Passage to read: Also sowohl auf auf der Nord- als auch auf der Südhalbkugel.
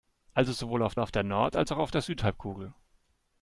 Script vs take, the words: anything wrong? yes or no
no